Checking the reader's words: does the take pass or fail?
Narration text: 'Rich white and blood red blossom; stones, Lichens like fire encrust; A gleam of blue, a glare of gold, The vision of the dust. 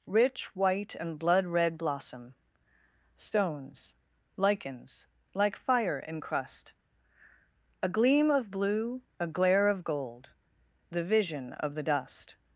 pass